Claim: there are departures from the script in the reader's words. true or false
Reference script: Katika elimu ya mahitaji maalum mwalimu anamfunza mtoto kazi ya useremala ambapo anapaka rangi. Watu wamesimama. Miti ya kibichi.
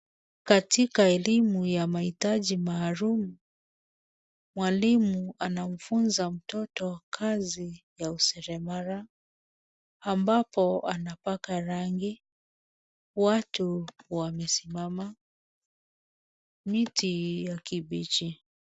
false